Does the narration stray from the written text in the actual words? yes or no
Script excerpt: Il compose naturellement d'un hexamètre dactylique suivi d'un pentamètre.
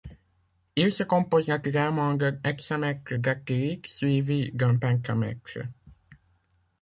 yes